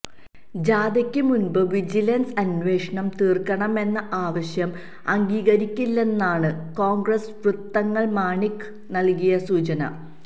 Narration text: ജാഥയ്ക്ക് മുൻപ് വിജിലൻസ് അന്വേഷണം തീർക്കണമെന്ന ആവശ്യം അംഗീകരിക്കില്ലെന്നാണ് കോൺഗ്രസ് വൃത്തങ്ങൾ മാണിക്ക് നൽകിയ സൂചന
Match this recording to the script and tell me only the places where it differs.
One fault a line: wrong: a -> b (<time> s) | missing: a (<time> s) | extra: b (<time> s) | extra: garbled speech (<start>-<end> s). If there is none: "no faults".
no faults